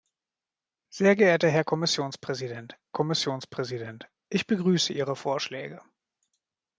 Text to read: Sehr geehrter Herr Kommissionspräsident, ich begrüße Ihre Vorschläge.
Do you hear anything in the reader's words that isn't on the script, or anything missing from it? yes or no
yes